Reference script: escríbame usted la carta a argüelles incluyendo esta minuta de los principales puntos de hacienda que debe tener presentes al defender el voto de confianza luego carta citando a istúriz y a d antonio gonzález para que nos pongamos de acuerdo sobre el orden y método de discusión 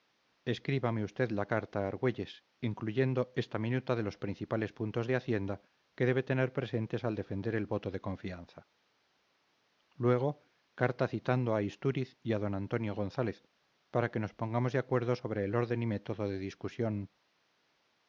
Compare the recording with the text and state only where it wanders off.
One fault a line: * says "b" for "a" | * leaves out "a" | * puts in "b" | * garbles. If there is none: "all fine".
all fine